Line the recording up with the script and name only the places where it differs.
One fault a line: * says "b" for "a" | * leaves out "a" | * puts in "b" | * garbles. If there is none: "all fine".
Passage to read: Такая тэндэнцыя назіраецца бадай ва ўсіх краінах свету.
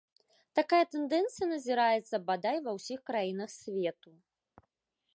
all fine